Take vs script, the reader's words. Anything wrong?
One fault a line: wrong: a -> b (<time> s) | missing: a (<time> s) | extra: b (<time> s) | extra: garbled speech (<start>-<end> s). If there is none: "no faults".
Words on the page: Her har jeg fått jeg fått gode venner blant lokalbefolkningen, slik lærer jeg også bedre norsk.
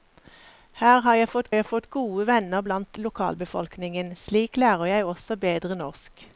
no faults